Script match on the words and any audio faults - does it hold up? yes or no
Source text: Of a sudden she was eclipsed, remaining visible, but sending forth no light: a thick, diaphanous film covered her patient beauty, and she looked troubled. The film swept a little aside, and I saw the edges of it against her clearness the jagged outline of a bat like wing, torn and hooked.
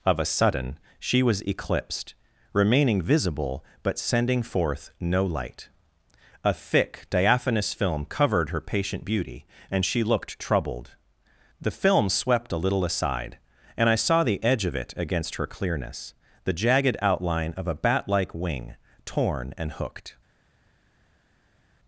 no